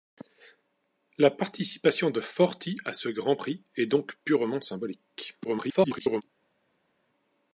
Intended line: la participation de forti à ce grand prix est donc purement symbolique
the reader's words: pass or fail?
fail